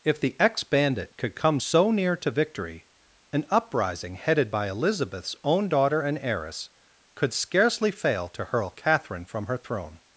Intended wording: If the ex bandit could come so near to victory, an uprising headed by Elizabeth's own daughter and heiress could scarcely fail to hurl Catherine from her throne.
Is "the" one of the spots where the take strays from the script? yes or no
no